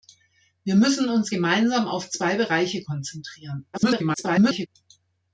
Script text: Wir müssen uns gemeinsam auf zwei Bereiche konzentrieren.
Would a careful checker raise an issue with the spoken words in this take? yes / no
yes